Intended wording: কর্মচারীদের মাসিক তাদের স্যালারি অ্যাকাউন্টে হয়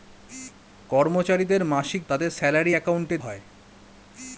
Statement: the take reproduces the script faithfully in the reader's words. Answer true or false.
true